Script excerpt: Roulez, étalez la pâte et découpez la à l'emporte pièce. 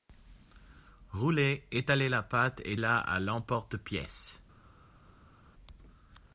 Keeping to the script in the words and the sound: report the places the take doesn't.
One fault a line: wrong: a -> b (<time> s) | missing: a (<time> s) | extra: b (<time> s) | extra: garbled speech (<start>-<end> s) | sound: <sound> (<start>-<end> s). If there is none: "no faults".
missing: découpez (2.8 s)